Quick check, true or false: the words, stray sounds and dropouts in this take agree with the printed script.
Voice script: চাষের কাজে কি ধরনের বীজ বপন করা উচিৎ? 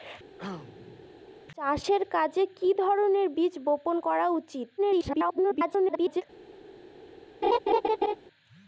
false